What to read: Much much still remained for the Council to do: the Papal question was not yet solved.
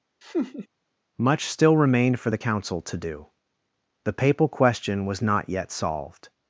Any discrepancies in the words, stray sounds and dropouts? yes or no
yes